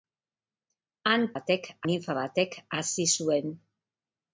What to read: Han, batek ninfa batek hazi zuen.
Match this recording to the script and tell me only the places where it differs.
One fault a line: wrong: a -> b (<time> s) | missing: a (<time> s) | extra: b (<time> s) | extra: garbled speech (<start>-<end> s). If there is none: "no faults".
no faults